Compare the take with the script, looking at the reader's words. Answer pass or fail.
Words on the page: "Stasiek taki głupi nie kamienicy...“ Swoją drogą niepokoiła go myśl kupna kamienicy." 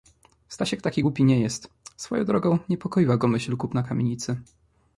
fail